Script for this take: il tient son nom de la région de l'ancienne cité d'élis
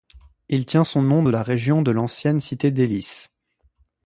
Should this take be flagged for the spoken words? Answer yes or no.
no